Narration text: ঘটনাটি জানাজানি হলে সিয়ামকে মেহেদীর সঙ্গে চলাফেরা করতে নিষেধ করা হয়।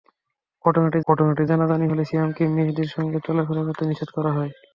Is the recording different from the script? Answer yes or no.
yes